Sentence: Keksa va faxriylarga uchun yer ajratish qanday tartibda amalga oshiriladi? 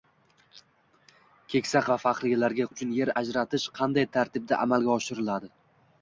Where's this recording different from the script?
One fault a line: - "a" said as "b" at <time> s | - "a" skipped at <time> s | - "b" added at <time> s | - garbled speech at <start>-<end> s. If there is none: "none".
none